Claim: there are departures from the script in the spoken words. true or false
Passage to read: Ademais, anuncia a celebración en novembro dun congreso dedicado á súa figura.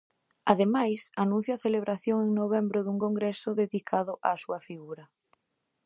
false